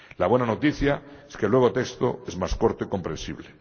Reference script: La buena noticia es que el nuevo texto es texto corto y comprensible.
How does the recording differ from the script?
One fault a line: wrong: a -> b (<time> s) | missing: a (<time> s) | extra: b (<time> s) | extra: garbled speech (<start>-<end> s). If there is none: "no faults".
wrong: texto -> más (2.4 s)